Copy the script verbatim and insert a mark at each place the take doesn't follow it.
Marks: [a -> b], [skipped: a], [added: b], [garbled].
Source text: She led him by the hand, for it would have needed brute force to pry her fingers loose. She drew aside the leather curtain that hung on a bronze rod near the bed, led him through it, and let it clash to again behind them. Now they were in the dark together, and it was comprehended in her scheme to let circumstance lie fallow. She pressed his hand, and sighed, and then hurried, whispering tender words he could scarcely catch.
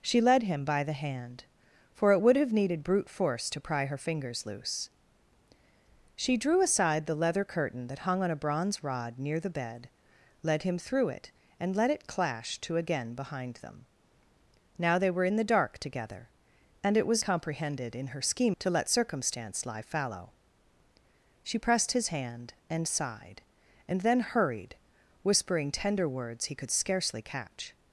She led him by the hand, for it would have needed brute force to pry her fingers loose. She drew aside the leather curtain that hung on a bronze rod near the bed, led him through it, and let it clash to again behind them. Now they were in the dark together, and it was comprehended in her scheme to let circumstance lie fallow. She pressed his hand, and sighed, and then hurried, whispering tender words he could scarcely catch.